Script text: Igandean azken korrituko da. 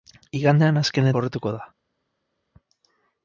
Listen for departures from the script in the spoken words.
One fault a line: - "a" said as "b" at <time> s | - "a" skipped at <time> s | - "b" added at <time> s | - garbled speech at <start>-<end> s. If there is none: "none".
none